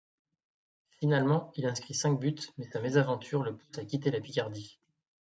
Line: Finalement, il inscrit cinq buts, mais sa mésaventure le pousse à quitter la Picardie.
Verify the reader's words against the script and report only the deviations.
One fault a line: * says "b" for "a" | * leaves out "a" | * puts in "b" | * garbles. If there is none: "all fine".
all fine